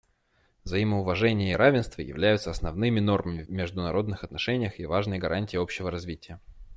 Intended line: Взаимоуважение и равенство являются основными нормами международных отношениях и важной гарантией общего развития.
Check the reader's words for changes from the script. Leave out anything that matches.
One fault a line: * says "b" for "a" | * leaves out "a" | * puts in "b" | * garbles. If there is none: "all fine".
all fine